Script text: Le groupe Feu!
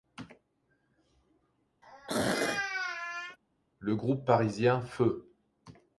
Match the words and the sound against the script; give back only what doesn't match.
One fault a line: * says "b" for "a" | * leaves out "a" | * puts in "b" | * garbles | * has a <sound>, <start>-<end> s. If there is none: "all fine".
* has a throat clearing, 1.8-3.4 s
* puts in "parisien"